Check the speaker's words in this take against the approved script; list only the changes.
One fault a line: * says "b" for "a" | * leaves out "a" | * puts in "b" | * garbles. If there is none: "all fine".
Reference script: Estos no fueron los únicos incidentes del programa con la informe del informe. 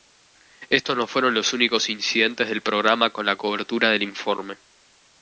* says "cobertura" for "informe"